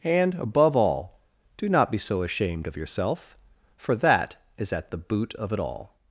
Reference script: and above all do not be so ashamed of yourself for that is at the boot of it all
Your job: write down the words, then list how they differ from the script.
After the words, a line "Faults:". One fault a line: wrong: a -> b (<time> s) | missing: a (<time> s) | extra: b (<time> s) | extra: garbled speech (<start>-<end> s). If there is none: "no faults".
and above all do not be so ashamed of yourself for that is at the boot of it all
Faults:
no faults